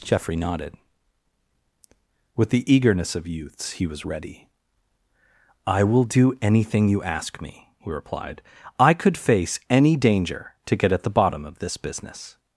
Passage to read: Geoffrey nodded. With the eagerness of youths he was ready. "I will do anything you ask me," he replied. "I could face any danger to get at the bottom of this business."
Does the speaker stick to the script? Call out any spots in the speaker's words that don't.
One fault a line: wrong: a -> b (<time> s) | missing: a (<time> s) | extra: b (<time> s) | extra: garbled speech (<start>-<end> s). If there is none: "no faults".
no faults